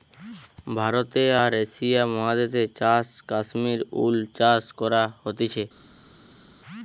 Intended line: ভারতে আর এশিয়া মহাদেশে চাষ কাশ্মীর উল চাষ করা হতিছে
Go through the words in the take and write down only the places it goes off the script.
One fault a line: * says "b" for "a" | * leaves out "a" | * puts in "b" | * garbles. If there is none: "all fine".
all fine